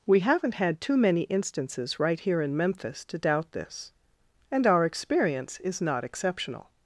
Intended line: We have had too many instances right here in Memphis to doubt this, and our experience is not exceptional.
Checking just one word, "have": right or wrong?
wrong